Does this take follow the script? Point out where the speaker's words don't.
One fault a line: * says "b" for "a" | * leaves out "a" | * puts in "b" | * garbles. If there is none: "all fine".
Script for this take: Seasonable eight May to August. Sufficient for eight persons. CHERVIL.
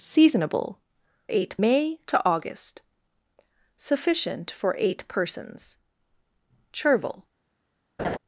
all fine